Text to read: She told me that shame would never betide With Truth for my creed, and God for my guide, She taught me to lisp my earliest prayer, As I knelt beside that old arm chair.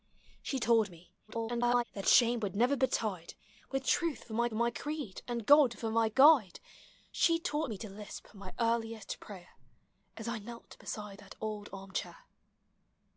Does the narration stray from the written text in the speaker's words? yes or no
yes